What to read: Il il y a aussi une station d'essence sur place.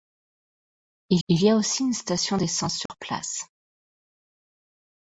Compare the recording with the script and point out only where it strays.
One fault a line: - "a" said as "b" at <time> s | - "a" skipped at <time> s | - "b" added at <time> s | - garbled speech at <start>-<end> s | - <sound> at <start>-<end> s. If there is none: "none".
- dropout at 2.9-2.9 s